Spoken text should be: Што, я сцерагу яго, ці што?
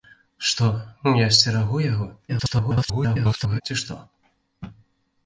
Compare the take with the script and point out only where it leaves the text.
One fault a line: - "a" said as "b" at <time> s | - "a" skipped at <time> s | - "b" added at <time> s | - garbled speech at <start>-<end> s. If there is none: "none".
- garbled speech at 2.3-3.6 s